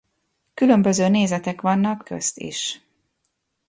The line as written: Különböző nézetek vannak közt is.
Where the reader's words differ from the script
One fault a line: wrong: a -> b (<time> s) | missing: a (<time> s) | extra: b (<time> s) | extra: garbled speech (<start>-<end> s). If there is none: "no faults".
no faults